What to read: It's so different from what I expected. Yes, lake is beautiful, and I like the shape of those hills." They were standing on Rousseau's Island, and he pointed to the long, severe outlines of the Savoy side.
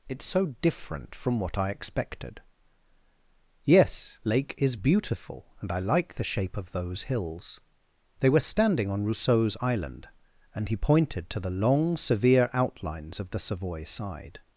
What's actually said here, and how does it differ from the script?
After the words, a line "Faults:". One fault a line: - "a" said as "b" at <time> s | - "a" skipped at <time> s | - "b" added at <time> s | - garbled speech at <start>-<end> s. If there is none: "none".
It's so different from what I expected. Yes, lake is beautiful, and I like the shape of those hills." They were standing on Rousseau's Island, and he pointed to the long, severe outlines of the Savoy side.
Faults:
none